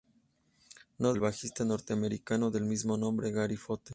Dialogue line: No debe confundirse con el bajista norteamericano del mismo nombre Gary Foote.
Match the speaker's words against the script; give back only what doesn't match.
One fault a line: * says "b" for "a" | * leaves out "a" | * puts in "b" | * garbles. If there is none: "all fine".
* leaves out "debe confundirse con"